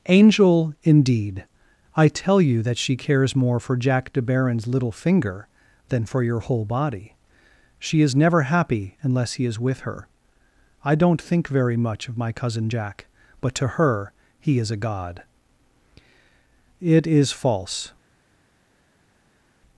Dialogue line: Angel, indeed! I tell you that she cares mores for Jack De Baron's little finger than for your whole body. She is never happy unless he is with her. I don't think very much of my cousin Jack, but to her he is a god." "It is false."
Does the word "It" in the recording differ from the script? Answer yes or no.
no